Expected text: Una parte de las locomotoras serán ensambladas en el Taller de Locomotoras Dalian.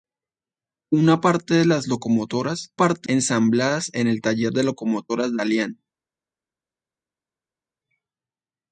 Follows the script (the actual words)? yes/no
no